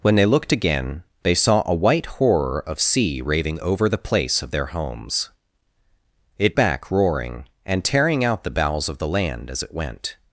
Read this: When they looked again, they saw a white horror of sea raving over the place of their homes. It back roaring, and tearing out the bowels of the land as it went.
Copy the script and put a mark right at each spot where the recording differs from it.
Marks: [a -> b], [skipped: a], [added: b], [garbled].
When they looked again, they saw a white horror of sea raving over the place of their homes. It back roaring, and tearing out the bowels of the land as it went.